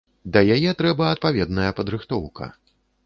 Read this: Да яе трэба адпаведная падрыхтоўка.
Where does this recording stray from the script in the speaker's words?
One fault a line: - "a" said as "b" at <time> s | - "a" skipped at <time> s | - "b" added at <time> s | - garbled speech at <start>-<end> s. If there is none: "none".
none